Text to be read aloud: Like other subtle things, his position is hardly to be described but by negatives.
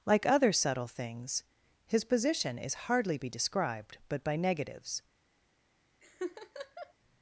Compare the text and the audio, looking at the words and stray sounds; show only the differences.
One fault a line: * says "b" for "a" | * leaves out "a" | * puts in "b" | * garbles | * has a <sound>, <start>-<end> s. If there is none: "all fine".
* leaves out "to"
* has a laugh, 6.0-6.9 s